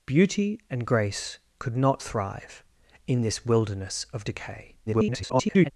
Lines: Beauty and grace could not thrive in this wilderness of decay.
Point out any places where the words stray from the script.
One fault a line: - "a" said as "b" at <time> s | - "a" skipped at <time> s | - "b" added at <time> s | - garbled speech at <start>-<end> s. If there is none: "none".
- garbled speech at 4.9-5.7 s